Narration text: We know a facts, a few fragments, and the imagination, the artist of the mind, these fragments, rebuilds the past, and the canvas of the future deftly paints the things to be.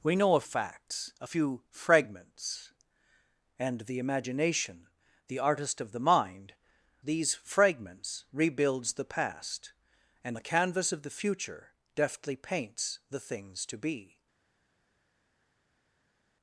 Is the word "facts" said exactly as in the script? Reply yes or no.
yes